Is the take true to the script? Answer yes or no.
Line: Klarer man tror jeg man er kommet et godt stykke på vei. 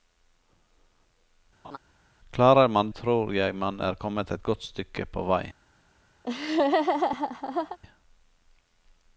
yes